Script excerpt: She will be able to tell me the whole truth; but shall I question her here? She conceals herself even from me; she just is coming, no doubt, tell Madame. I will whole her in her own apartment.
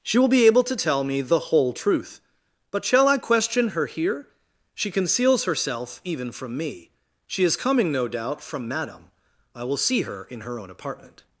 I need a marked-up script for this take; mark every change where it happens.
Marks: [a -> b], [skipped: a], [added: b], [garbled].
She will be able to tell me the whole truth; but shall I question her here? She conceals herself even from me; she [skipped: just] is coming, no doubt, [tell -> from] Madame. I will [whole -> see] her in her own apartment.